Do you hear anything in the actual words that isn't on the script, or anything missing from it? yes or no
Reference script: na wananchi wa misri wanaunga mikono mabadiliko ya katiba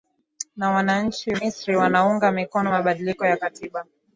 yes